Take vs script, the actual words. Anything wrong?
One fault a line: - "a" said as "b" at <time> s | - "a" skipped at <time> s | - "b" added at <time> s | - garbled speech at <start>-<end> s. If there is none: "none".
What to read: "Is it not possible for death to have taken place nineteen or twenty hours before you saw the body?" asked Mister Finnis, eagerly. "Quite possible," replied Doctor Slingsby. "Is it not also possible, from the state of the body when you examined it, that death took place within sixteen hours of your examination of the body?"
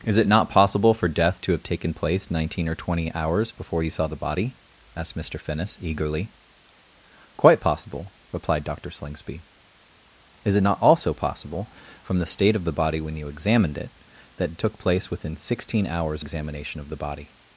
- "death" skipped at 14.6 s
- "of your" skipped at 16.2 s